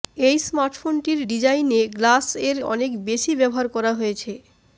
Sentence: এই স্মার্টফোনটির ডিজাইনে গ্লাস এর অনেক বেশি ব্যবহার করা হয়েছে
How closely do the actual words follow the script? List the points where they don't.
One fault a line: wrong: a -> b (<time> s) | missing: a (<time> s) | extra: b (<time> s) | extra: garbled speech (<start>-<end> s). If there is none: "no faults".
no faults